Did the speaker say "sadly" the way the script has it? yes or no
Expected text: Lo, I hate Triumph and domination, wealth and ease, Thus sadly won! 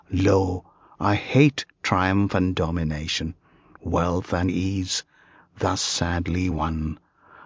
yes